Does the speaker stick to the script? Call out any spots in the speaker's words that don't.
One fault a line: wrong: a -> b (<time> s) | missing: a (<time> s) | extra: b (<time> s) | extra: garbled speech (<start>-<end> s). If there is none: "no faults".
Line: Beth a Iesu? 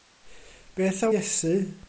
no faults